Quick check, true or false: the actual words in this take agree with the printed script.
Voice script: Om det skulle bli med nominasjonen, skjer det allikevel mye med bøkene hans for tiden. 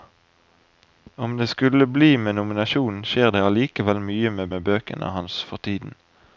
false